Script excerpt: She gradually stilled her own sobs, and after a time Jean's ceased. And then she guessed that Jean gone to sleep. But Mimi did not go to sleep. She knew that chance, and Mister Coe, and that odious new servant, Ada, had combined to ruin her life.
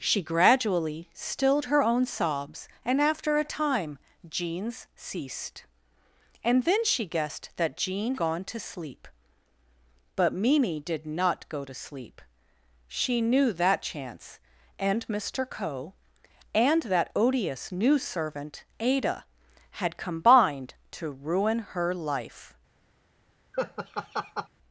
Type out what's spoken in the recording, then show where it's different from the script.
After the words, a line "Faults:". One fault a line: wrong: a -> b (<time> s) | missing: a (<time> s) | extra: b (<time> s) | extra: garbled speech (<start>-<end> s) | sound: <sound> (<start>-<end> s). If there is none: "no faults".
She gradually stilled her own sobs, and after a time Jean's ceased. And then she guessed that Jean gone to sleep. But Mimi did not go to sleep. She knew that chance, and Mister Coe, and that odious new servant, Ada, had combined to ruin her life.
Faults:
sound: laugh (23.5-24.5 s)